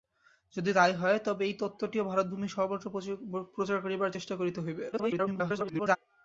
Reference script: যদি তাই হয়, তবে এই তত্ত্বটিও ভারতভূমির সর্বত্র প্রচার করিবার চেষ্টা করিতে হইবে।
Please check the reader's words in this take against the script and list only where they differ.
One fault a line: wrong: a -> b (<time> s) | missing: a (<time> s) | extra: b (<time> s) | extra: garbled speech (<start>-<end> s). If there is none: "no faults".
extra: garbled speech (4.9-6.0 s)